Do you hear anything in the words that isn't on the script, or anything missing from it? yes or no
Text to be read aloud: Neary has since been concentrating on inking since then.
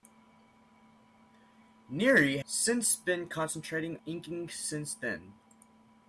yes